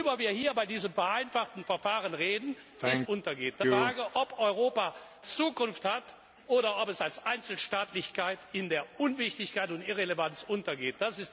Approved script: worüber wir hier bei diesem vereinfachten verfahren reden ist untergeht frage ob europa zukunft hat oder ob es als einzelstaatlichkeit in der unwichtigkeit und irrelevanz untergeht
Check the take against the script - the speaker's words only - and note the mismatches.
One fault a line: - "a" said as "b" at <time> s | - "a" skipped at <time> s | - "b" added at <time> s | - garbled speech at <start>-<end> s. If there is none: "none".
none